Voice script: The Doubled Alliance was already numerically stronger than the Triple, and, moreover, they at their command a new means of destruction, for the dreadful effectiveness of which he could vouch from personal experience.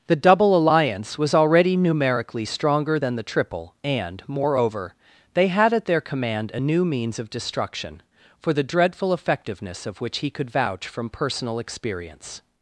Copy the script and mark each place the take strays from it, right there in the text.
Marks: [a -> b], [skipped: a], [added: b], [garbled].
The [Doubled -> Double] Alliance was already numerically stronger than the Triple, and, moreover, they [added: had] at their command a new means of destruction, for the dreadful effectiveness of which he could vouch from personal experience.